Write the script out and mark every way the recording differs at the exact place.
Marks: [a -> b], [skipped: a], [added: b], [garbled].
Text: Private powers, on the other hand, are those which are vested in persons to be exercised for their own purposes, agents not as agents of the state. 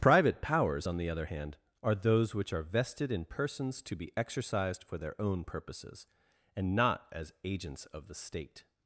Private powers, on the other hand, are those which are vested in persons to be exercised for their own purposes, [agents -> and] not as agents of the state.